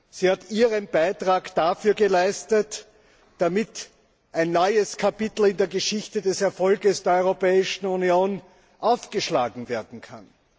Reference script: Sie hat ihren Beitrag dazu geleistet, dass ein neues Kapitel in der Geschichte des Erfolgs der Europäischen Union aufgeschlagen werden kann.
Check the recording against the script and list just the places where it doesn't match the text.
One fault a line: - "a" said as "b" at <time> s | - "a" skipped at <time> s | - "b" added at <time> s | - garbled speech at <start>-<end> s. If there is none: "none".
none